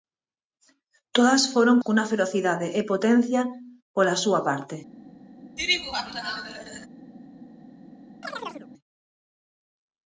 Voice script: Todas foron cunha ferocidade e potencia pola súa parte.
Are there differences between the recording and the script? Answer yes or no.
no